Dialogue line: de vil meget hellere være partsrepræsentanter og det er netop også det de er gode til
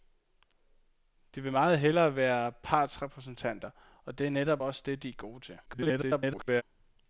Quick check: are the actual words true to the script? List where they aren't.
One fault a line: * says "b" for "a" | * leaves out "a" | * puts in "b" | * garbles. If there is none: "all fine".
* garbles